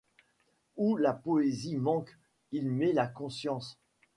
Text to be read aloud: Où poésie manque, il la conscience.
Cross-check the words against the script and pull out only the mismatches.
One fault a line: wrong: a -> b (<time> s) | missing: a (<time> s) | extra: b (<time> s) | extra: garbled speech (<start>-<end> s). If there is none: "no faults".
extra: la (1.0 s)
extra: met (2.7 s)